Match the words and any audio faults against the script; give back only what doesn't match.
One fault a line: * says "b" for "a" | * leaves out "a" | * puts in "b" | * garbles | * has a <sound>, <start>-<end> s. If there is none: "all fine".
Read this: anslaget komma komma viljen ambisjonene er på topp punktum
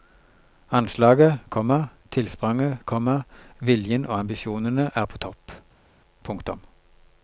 * puts in "tilspranget"
* puts in "og"